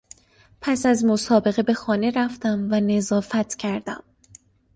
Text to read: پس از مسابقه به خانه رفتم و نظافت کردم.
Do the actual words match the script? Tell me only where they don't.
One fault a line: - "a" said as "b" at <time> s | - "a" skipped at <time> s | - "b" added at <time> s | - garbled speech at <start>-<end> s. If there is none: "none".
none